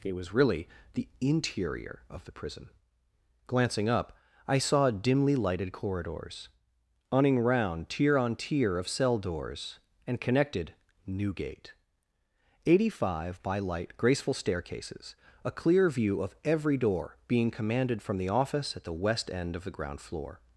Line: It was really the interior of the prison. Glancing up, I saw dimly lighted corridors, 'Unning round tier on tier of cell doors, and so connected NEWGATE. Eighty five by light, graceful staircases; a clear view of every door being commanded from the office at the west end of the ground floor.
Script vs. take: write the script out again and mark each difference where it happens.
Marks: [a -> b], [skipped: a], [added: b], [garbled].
It was really the interior of the prison. Glancing up, I saw dimly lighted corridors, 'Unning round tier on tier of cell doors, and [skipped: so] connected NEWGATE. Eighty five by light, graceful staircases; a clear view of every door being commanded from the office at the west end of the ground floor.